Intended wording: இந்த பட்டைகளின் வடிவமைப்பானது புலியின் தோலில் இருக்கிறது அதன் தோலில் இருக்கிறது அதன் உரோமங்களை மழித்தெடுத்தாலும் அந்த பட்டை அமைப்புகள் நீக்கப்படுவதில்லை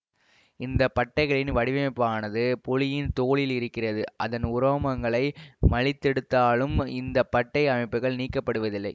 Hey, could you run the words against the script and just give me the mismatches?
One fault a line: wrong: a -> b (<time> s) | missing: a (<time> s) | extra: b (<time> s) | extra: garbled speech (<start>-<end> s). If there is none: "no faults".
missing: தோலில் இருக்கிறது அதன் (4.4 s)
wrong: அந்த -> இந்த (6.9 s)